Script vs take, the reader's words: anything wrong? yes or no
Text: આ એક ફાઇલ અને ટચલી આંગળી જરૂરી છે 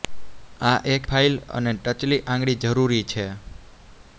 no